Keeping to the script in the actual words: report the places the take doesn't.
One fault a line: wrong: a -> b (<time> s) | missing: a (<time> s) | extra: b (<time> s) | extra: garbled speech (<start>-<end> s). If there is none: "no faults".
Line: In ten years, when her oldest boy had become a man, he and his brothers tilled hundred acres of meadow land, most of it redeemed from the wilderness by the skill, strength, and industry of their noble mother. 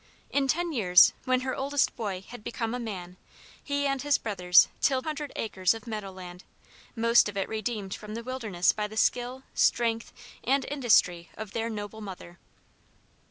no faults